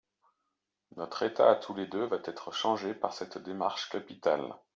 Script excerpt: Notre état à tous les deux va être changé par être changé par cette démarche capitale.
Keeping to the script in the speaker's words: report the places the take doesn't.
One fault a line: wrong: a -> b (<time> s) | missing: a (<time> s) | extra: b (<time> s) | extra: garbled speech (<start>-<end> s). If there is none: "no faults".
missing: être changé par (3.1 s)